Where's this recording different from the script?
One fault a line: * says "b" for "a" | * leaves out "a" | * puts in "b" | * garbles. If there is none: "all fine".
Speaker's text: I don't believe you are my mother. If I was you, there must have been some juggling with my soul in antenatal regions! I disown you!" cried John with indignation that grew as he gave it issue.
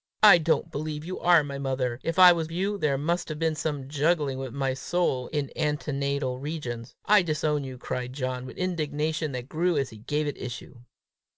all fine